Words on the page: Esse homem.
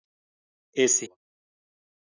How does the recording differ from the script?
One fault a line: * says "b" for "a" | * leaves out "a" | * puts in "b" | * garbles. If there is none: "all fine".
all fine